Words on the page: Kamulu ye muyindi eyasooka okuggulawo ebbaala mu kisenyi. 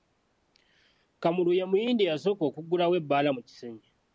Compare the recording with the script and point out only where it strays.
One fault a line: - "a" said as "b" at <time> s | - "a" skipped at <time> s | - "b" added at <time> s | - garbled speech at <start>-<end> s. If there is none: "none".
none